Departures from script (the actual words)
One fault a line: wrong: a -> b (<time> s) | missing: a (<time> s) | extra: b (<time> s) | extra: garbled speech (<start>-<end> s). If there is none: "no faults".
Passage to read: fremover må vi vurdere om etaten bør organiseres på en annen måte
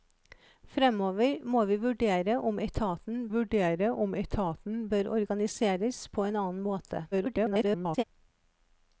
extra: vurdere om etaten (3.3 s)
extra: garbled speech (7.1-8.0 s)